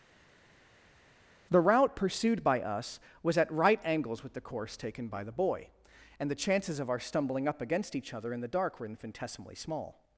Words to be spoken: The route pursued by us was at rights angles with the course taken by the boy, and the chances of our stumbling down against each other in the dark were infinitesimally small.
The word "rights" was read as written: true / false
false